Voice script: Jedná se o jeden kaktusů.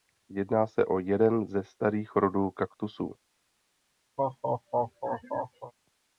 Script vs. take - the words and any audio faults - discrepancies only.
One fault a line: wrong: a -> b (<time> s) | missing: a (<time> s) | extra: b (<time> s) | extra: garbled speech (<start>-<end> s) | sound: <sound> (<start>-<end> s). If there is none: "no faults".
extra: ze starých rodů (1.5 s)
sound: laugh (4.2-5.7 s)